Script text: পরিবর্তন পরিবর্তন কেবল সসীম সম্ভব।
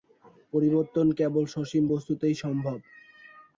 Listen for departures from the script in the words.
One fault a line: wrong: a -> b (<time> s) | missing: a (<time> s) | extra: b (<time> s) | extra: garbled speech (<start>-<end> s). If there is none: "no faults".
missing: পরিবর্তন (1.1 s)
extra: বস্তুতেই (1.9 s)